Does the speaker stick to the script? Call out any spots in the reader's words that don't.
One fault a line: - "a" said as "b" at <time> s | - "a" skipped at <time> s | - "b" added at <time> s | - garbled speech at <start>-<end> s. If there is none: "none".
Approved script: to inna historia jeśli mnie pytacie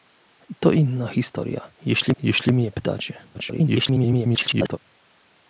- "jeśli" added at 2.2 s
- garbled speech at 3.3-4.8 s